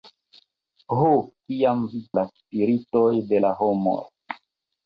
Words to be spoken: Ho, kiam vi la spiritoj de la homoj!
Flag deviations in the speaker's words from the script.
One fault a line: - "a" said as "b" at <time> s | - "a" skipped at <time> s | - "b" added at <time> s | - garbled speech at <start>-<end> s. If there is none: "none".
none